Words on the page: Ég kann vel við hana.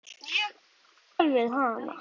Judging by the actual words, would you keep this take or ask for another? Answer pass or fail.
pass